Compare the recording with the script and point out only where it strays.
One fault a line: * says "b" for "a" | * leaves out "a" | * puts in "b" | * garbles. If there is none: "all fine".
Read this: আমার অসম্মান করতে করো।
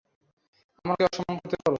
all fine